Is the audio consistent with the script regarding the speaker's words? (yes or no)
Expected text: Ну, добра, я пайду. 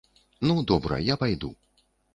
yes